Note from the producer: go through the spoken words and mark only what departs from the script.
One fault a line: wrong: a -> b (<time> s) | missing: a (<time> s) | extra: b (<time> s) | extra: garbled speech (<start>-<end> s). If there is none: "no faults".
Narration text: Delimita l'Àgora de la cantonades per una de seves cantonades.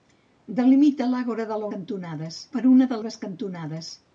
no faults